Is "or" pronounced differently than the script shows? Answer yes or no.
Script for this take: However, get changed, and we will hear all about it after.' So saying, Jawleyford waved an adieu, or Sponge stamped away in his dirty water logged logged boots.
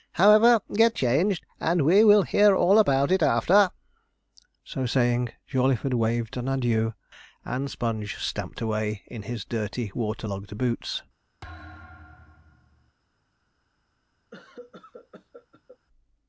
yes